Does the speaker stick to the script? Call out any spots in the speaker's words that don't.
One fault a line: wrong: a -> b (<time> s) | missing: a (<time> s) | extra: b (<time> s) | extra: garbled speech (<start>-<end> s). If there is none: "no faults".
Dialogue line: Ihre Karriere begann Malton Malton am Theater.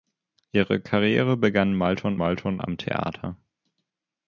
no faults